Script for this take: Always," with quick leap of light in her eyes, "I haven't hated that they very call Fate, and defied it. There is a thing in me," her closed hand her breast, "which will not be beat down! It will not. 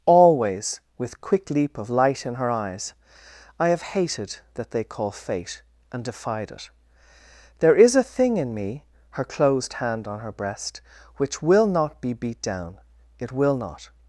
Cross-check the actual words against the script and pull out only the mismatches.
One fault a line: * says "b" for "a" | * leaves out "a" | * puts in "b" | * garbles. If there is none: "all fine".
* says "have" for "haven't"
* leaves out "very"
* puts in "on"